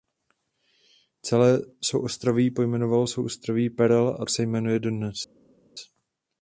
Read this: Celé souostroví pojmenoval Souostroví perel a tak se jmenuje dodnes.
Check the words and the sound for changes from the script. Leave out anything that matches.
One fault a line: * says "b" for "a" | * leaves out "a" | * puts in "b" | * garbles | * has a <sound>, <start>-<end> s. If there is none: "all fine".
* leaves out "tak"